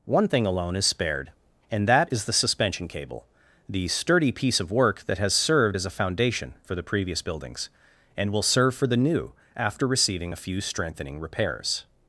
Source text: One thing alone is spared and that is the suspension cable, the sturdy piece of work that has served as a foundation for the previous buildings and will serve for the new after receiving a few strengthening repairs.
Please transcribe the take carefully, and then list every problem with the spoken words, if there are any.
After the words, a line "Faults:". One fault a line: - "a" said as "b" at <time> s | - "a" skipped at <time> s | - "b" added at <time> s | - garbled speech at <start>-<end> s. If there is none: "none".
One thing alone is spared and that is the suspension cable, the sturdy piece of work that has served as a foundation for the previous buildings and will serve for the new after receiving a few strengthening repairs.
Faults:
none